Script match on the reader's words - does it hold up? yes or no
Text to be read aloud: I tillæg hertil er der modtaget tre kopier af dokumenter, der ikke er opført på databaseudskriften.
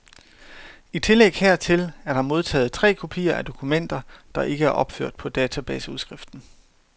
yes